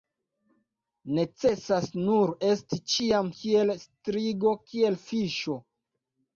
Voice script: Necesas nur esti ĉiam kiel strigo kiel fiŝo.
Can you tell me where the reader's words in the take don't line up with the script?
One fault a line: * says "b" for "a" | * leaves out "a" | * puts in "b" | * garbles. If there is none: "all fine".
all fine